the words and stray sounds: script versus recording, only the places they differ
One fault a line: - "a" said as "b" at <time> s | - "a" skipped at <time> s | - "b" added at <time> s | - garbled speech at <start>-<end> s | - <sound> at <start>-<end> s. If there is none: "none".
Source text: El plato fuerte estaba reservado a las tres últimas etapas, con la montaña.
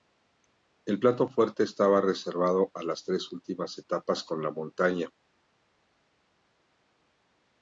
none